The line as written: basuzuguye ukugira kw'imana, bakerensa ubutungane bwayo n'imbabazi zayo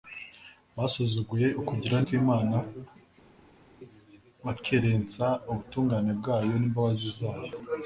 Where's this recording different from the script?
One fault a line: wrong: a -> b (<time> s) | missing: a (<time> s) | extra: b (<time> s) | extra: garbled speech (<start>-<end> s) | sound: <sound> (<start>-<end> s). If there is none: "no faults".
no faults